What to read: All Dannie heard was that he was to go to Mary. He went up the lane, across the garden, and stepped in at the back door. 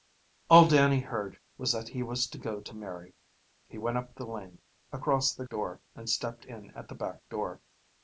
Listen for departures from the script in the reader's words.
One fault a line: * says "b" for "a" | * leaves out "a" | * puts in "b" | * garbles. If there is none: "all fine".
* says "door" for "garden"